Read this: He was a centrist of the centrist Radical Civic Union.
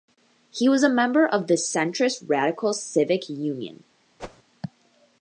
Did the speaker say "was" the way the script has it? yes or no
yes